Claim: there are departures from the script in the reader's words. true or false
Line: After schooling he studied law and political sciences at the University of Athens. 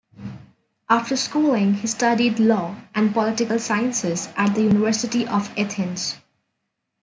false